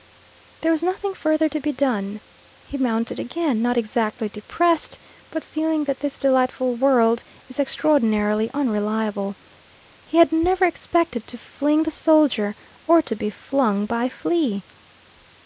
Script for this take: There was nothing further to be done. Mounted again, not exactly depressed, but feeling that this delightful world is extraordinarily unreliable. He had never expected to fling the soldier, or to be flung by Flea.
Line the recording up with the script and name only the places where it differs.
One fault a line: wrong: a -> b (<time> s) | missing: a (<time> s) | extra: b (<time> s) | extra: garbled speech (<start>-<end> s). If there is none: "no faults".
extra: He (2.6 s)